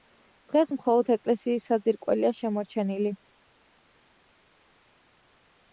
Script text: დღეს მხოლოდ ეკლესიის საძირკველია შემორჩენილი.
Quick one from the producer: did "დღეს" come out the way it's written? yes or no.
yes